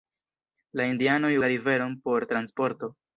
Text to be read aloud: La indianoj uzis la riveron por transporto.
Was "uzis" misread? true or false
true